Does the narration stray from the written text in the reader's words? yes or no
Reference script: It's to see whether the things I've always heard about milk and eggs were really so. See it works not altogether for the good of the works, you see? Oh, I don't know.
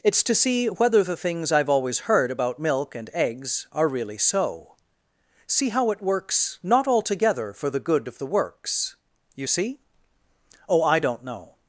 yes